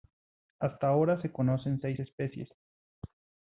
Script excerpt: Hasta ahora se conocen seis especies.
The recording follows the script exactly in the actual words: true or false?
true